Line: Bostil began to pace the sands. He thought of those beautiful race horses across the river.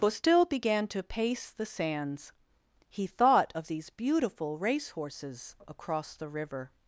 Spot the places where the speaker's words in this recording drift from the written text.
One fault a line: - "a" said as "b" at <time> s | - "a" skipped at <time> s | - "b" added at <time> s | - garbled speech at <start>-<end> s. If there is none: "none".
- "those" said as "these" at 3.7 s